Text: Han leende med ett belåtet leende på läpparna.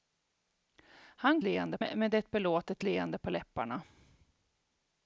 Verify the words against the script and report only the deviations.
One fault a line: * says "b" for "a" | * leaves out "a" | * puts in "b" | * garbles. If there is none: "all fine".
all fine